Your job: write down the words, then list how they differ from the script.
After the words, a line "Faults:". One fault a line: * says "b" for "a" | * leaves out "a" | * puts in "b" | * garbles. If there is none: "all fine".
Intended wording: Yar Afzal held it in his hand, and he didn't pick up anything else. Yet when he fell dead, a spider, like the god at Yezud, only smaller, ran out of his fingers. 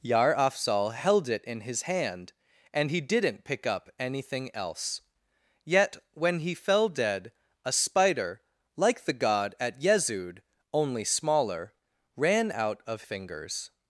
Yar Afzal held it in his hand, and he didn't pick up anything else. Yet when he fell dead, a spider, like the god at Yezud, only smaller, ran out of fingers.
Faults:
* leaves out "his"